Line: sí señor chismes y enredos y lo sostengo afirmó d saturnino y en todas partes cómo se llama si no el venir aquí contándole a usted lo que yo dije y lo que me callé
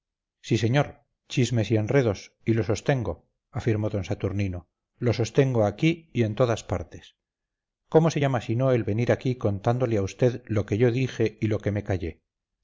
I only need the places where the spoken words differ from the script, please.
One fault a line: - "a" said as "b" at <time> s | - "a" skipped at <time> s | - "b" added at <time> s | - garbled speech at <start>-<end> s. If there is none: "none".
- "lo sostengo aquí" added at 5.0 s